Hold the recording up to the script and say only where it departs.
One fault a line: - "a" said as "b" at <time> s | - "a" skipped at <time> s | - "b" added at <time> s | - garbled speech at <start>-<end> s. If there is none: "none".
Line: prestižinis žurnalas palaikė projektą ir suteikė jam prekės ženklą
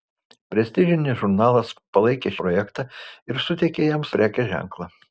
none